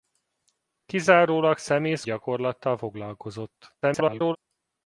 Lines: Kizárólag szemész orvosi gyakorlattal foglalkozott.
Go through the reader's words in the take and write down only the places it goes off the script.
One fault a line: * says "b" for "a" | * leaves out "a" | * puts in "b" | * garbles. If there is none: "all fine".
* leaves out "orvosi"
* garbles